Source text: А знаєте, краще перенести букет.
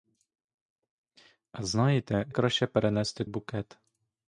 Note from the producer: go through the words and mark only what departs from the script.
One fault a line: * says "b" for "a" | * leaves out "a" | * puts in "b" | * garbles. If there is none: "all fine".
all fine